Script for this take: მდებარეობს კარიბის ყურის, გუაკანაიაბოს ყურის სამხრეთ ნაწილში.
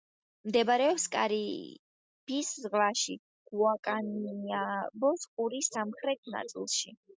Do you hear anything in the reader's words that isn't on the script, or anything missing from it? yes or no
yes